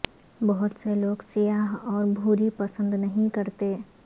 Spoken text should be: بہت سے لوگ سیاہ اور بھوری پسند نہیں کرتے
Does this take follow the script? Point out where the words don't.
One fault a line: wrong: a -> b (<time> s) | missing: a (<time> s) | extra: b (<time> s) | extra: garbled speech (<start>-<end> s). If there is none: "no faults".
no faults